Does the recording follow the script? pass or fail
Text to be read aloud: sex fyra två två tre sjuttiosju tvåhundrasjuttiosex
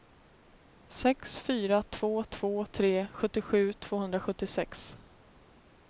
pass